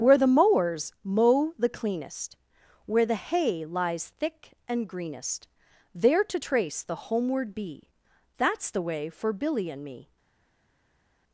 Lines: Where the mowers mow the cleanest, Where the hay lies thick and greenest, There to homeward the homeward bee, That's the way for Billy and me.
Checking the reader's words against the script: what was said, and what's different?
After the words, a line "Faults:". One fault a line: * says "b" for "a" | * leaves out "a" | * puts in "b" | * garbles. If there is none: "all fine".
Where the mowers mow the cleanest, Where the hay lies thick and greenest, There to trace the homeward bee, That's the way for Billy and me.
Faults:
* says "trace" for "homeward"